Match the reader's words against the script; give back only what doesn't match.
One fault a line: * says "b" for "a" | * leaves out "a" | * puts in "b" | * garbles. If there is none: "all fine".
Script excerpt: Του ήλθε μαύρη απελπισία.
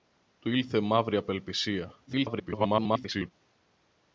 * garbles